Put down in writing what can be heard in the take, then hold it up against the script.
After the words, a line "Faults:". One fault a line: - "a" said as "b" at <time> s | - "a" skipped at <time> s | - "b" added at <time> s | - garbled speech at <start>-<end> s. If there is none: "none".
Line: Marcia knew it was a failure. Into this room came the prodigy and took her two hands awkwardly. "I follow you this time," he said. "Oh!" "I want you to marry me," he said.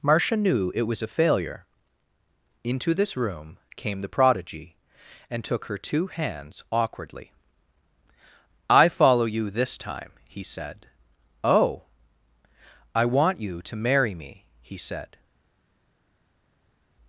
Marcia knew it was a failure. Into this room came the prodigy and took her two hands awkwardly. "I follow you this time," he said. "Oh!" "I want you to marry me," he said.
Faults:
none